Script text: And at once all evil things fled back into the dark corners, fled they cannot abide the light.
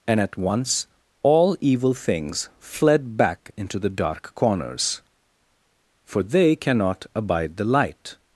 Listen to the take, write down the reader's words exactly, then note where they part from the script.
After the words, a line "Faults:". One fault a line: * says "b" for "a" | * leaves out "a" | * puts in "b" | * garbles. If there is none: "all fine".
And at once all evil things fled back into the dark corners, for they cannot abide the light.
Faults:
* says "for" for "fled"